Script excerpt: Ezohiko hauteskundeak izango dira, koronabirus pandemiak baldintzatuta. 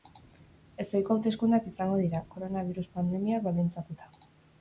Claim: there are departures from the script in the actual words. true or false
false